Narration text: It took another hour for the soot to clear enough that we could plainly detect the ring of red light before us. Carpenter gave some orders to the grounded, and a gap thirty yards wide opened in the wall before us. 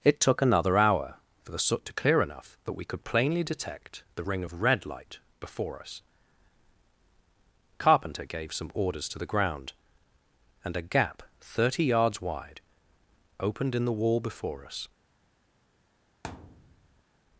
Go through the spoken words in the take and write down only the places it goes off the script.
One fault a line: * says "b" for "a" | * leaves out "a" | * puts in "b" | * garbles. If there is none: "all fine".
* says "ground" for "grounded"